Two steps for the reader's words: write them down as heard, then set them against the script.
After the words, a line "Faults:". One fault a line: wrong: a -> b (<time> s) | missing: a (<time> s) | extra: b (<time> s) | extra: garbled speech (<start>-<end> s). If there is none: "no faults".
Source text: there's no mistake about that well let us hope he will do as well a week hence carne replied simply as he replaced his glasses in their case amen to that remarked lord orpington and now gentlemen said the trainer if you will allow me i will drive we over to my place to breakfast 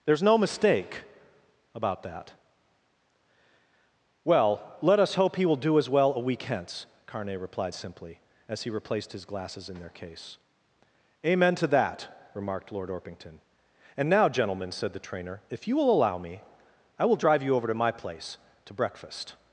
there's no mistake about that well let us hope he will do as well a week hence carne replied simply as he replaced his glasses in their case amen to that remarked lord orpington and now gentlemen said the trainer if you will allow me i will drive you over to my place to breakfast
Faults:
wrong: we -> you (17.4 s)